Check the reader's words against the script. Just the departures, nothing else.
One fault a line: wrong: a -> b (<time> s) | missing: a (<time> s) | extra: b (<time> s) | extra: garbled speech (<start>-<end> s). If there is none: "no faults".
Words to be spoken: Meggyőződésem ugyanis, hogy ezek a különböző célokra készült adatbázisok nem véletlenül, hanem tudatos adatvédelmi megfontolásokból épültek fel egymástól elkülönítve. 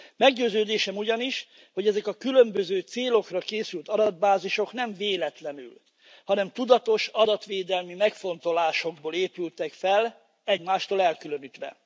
no faults